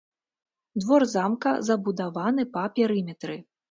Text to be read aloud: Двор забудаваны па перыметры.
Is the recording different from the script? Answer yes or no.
yes